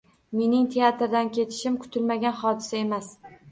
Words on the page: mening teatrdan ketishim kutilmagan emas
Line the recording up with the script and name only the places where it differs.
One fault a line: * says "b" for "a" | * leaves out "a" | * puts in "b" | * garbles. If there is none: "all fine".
* puts in "hodisa"